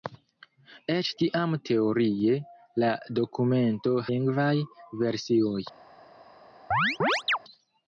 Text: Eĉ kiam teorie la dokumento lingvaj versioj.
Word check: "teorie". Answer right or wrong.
right